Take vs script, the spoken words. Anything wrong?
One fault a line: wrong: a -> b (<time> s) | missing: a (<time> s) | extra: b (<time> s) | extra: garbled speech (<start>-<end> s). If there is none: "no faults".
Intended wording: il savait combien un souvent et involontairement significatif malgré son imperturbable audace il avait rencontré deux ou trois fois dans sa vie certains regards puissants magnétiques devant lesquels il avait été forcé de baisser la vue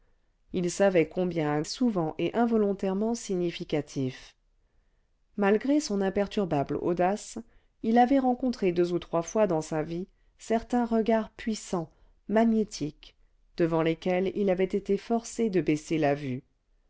no faults